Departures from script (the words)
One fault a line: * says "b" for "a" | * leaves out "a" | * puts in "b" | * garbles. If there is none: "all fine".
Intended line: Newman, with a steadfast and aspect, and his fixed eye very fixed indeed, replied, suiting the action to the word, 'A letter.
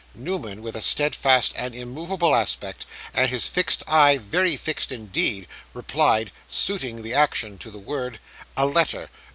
* puts in "immovable"